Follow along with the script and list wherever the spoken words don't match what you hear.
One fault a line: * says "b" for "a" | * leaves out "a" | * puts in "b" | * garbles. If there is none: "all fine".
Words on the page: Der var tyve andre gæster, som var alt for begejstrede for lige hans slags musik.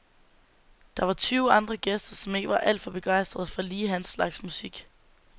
* puts in "ikke"